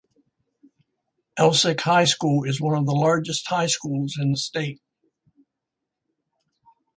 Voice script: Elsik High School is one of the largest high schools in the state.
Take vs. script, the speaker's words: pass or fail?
pass